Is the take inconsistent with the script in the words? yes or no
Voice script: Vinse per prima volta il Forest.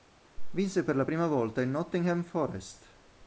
yes